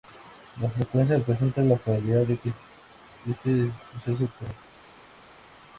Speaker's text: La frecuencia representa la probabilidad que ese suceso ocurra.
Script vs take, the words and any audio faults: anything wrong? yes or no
yes